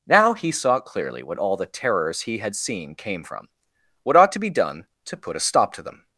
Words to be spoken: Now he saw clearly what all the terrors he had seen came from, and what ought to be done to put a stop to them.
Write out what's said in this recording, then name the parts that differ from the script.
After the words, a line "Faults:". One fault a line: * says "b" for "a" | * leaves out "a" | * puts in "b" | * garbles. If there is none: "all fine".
Now he saw clearly what all the terrors he had seen came from, what ought to be done to put a stop to them.
Faults:
* leaves out "and"